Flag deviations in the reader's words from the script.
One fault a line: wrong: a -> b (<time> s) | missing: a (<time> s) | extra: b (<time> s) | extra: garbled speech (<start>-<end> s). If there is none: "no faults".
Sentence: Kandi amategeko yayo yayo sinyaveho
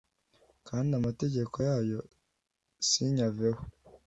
missing: yayo (2.0 s)